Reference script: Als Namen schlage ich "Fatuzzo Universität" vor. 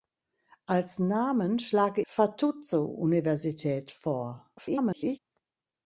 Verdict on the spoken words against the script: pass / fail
fail